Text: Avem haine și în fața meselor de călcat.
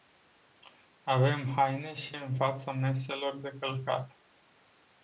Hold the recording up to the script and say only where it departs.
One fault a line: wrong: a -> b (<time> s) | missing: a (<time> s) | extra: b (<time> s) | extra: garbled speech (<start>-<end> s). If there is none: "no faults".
no faults